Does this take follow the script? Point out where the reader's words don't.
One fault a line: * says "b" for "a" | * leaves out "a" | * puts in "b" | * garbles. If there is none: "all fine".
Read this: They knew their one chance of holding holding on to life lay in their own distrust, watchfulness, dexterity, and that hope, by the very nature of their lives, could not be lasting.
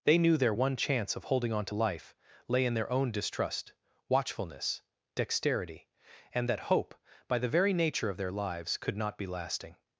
* leaves out "holding"